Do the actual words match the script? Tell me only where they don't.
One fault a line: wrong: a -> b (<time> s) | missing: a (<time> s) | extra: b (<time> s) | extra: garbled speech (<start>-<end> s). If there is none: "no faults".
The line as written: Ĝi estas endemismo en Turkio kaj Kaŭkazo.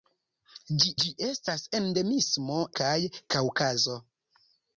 extra: ĝi (1.0 s)
missing: en Turkio (2.6 s)